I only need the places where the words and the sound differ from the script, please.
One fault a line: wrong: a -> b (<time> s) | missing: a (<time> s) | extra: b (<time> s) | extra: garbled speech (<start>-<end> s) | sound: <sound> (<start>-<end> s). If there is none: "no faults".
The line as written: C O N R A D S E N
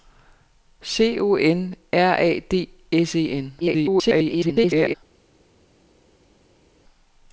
extra: garbled speech (3.6-4.9 s)